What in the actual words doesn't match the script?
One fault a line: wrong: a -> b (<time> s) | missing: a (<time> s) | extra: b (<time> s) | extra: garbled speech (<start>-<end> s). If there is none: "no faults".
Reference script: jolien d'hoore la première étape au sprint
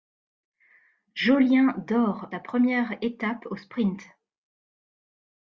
no faults